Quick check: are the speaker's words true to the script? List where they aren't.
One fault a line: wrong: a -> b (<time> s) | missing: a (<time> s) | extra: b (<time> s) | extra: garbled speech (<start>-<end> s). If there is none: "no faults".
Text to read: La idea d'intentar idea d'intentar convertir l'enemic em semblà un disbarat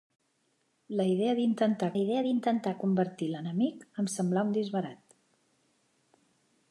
no faults